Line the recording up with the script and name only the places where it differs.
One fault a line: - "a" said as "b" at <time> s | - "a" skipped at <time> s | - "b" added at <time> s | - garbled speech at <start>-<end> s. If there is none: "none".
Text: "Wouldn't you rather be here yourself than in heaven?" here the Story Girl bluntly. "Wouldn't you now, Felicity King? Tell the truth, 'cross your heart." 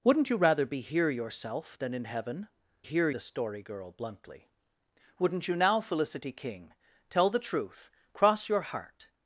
none